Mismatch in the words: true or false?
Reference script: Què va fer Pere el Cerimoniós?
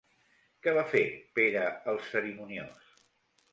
false